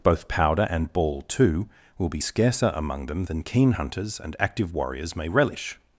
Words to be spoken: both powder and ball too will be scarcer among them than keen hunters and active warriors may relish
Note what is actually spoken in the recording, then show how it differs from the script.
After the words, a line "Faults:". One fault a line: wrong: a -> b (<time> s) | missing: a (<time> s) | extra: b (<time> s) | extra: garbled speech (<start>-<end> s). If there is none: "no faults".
both powder and ball too will be scarcer among them than keen hunters and active warriors may relish
Faults:
no faults